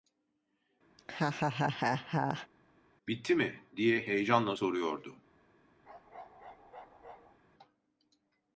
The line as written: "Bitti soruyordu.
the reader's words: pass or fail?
fail